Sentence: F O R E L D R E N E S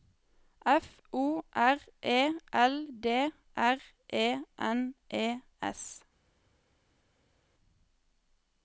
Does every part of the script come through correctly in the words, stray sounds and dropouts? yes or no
yes